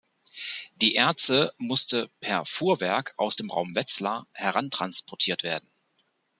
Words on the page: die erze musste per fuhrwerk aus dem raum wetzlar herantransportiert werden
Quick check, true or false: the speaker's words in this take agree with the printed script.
true